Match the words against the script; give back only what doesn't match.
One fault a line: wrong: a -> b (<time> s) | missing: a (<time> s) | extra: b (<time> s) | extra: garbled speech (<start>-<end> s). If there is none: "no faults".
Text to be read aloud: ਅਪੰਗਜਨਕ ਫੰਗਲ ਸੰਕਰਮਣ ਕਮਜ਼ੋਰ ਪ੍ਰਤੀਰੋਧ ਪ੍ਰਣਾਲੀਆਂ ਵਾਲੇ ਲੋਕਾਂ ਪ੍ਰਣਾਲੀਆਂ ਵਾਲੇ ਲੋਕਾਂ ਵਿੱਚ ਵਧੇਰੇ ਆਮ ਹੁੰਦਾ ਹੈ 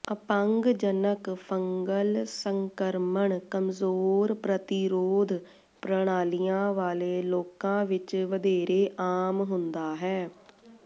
missing: ਪ੍ਰਣਾਲੀਆਂ ਵਾਲੇ ਲੋਕਾਂ (7.8 s)